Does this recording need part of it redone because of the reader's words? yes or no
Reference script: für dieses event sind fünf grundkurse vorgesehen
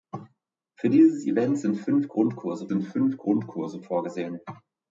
yes